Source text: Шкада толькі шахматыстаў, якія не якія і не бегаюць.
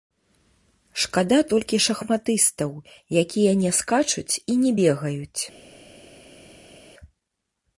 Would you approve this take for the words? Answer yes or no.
no